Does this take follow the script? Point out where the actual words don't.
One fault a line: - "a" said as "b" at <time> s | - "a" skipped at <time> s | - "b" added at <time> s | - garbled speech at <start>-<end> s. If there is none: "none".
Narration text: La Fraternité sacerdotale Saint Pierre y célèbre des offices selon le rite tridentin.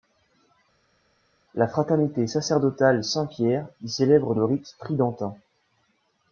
- "des offices selon" skipped at 4.3 s